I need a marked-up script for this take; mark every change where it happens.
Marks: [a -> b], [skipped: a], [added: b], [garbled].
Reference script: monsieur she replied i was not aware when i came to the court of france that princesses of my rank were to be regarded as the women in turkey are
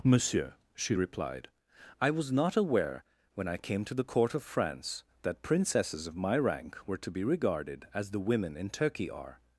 monsieur she replied i was not aware when i came to the court of france that princesses of my rank were to be regarded as the women in turkey are